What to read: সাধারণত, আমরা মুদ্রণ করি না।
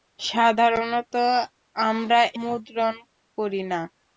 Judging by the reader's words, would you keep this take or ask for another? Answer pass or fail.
pass